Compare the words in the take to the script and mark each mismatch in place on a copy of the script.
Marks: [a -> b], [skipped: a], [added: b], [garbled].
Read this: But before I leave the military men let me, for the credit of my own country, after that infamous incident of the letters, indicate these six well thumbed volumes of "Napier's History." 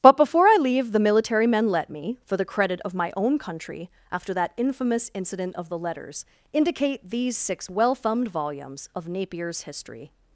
But before I leave the military men let me, for the credit of my own country, after that infamous incident of the letters, indicate these six well thumbed volumes of "Napier's History."